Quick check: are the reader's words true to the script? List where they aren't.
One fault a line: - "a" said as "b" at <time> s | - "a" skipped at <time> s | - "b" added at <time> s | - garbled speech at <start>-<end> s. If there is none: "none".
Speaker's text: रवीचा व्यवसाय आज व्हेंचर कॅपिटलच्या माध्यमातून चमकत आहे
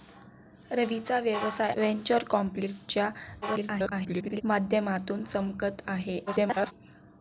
- "आज" skipped at 1.7 s
- garbled speech at 3.4-4.4 s
- garbled speech at 6.3-6.7 s